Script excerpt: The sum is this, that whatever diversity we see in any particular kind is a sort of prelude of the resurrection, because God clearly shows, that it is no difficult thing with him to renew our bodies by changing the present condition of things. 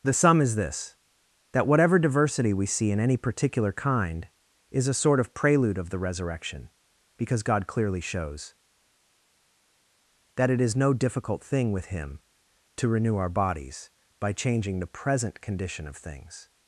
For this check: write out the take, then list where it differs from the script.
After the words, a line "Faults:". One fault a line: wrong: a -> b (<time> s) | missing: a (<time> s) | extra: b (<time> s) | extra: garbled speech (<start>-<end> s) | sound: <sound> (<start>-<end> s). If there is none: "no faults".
The sum is this, that whatever diversity we see in any particular kind is a sort of prelude of the resurrection, because God clearly shows, that it is no difficult thing with him to renew our bodies by changing the present condition of things.
Faults:
no faults